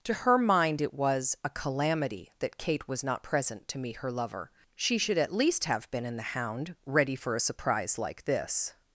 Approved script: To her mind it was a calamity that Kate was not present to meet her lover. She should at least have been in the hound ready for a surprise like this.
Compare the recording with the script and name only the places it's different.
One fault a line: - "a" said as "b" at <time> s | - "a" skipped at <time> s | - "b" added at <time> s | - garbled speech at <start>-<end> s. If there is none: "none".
none